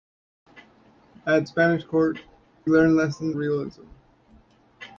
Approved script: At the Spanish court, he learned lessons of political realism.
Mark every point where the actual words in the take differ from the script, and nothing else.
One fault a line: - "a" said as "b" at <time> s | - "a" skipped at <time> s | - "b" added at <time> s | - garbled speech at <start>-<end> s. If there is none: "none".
- "the" skipped at 1.4 s
- "he" skipped at 2.2 s
- "of political" skipped at 3.4 s